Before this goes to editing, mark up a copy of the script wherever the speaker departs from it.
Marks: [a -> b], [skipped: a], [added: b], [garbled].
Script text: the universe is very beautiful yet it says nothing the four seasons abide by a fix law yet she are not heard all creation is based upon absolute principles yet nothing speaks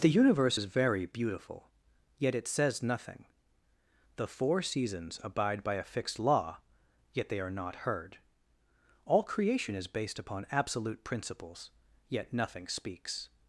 the universe is very beautiful yet it says nothing the four seasons abide by a [fix -> fixed] law yet [she -> they] are not heard all creation is based upon absolute principles yet nothing speaks